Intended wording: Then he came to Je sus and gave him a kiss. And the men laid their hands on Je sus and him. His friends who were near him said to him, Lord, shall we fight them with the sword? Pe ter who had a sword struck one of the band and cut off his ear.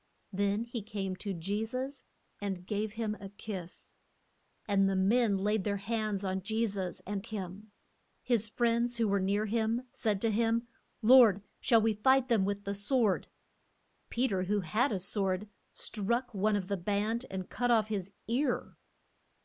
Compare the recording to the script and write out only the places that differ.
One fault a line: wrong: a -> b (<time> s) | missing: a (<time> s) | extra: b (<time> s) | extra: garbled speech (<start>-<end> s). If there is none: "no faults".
no faults